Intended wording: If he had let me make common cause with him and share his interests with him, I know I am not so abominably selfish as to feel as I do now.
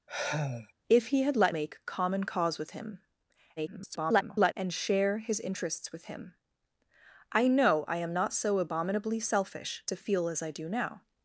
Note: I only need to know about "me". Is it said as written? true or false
false